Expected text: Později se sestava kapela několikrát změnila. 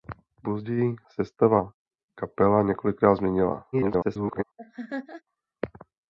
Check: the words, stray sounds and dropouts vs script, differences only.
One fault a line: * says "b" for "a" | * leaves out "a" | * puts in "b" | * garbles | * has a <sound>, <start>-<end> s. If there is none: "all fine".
* leaves out "se"
* garbles
* has a laugh, 4.6-5.2 s